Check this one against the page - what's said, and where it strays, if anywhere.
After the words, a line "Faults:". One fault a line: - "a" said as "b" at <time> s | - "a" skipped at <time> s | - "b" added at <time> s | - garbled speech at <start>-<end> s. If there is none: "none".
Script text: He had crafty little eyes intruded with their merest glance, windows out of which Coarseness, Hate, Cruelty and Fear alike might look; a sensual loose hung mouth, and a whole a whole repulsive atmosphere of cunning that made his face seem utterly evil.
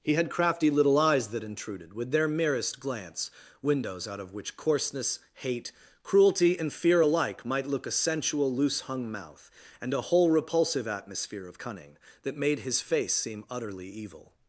He had crafty little eyes that intruded with their merest glance, windows out of which Coarseness, Hate, Cruelty and Fear alike might look; a sensual loose hung mouth, and a whole repulsive atmosphere of cunning that made his face seem utterly evil.
Faults:
- "that" added at 1.3 s
- "a whole" skipped at 10.3 s